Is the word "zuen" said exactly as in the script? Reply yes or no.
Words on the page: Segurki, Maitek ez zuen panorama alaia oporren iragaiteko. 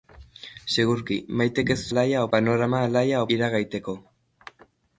no